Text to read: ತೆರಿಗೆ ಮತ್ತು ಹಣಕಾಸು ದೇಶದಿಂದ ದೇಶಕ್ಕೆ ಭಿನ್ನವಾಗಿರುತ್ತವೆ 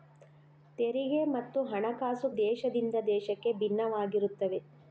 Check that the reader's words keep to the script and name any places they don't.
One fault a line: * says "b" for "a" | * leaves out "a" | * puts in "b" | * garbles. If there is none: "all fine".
all fine